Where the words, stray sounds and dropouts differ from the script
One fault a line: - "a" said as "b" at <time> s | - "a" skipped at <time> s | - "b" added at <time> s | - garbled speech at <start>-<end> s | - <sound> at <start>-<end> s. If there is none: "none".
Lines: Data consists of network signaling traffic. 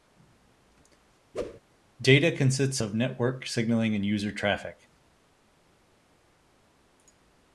- whoosh at 1.3-1.6 s
- "and user" added at 3.9 s